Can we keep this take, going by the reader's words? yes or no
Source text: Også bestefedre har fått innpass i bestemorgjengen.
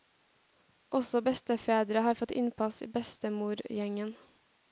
yes